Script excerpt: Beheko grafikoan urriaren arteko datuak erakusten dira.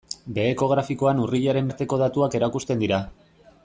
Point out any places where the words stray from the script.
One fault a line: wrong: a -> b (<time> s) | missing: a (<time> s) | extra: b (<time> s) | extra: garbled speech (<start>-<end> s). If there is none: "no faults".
no faults